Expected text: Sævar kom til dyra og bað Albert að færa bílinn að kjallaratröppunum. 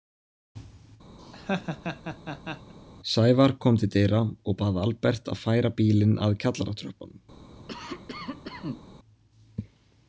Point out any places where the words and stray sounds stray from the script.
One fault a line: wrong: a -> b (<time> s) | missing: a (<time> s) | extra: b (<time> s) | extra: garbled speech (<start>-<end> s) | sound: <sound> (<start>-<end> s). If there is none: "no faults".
sound: laugh (1.2-2.7 s)
sound: cough (7.7-8.8 s)